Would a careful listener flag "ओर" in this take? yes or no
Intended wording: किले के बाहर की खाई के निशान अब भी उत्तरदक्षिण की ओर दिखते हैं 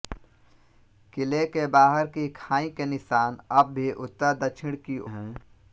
yes